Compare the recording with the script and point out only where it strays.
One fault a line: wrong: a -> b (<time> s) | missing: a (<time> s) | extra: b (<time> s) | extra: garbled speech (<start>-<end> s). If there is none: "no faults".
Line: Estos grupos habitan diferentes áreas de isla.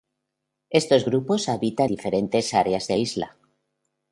no faults